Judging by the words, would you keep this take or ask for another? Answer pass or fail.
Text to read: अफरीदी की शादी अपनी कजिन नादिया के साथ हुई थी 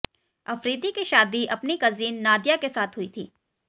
pass